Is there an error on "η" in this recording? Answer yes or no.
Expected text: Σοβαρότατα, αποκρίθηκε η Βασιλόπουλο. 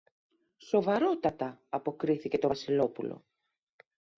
yes